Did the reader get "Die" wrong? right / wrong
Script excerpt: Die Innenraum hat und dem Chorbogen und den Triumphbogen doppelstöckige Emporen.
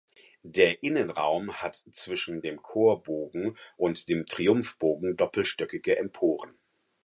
wrong